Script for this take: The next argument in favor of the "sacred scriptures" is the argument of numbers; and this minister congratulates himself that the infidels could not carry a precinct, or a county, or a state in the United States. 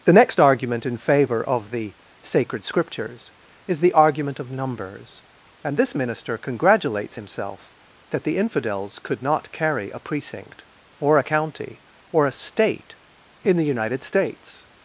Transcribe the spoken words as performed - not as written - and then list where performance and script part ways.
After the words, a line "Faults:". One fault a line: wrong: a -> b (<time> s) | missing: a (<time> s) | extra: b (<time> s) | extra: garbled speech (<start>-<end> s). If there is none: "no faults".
The next argument in favor of the "sacred scriptures" is the argument of numbers; and this minister congratulates himself that the infidels could not carry a precinct, or a county, or a state in the United States.
Faults:
no faults